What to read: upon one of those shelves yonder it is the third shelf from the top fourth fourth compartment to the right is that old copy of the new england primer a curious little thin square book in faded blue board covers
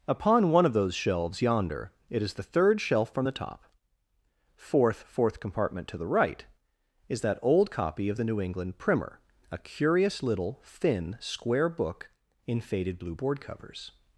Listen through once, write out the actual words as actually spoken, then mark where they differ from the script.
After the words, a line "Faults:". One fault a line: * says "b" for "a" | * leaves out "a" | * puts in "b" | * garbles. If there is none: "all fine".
upon one of those shelves yonder it is the third shelf from the top fourth fourth compartment to the right is that old copy of the new england primer a curious little thin square book in faded blue board covers
Faults:
all fine